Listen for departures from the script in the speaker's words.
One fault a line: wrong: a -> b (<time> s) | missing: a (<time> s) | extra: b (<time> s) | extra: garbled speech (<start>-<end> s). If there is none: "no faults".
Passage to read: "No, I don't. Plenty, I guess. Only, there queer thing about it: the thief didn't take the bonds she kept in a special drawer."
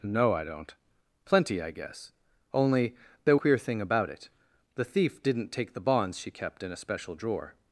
no faults